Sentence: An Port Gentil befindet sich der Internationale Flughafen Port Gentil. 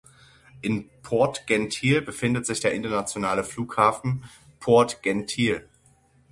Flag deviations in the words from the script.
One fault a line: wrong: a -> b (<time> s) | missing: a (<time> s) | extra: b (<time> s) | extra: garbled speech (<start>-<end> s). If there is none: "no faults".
wrong: An -> In (0.6 s)